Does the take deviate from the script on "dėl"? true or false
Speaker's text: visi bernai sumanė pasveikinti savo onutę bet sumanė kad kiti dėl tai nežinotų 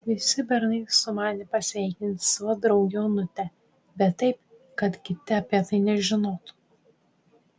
true